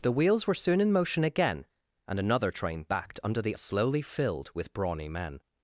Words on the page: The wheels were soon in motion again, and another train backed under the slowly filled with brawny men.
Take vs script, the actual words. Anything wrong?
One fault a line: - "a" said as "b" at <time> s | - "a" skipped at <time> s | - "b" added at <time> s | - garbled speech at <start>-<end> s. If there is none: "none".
none